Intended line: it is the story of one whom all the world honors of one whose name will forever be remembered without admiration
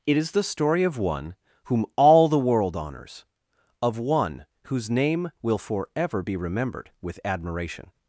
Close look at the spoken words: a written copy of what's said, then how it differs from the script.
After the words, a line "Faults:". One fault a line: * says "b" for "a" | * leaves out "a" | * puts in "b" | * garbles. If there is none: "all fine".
it is the story of one whom all the world honors of one whose name will forever be remembered with admiration
Faults:
* says "with" for "without"